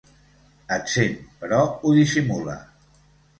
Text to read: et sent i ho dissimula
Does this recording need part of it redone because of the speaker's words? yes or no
yes